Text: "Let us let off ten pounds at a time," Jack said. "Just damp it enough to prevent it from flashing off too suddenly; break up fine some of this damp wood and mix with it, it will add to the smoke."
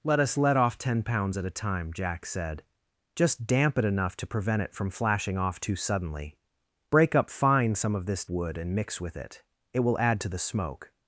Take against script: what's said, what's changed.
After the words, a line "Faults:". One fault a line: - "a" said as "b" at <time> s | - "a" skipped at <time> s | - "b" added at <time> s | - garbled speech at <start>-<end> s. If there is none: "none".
"Let us let off ten pounds at a time," Jack said. "Just damp it enough to prevent it from flashing off too suddenly; break up fine some of this wood and mix with it, it will add to the smoke."
Faults:
- "damp" skipped at 8.2 s